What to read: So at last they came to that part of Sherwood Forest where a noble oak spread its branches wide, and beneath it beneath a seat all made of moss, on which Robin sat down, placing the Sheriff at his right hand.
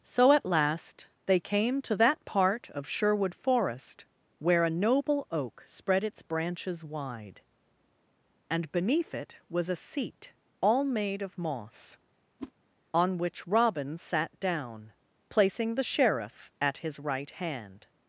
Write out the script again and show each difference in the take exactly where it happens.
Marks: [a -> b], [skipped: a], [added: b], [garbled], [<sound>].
So at last they came to that part of Sherwood Forest where a noble oak spread its branches wide, and beneath it [beneath -> was] a seat all made of moss, [whoosh] on which Robin sat down, placing the Sheriff at his right hand.